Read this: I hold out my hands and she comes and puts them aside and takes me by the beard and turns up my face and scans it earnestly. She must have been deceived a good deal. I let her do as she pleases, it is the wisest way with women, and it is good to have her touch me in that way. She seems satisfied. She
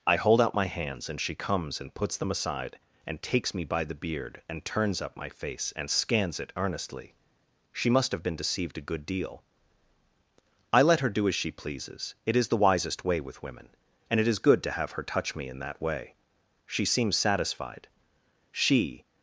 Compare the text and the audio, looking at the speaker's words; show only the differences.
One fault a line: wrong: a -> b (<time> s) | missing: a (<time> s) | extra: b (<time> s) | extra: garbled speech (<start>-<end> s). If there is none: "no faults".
no faults